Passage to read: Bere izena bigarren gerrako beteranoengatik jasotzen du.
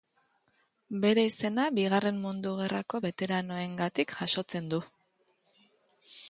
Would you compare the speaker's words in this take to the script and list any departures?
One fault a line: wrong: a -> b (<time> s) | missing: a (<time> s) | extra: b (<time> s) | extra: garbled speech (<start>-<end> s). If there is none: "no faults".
extra: mundu (2.2 s)